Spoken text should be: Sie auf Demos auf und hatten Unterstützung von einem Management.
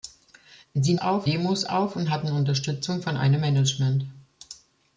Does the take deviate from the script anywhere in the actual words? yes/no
no